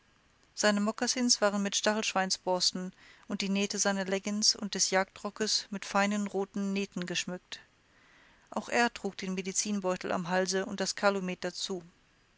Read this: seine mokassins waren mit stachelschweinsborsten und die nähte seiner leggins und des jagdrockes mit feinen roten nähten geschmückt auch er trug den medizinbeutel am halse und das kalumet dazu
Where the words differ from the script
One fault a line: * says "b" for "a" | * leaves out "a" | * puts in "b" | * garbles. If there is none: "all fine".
all fine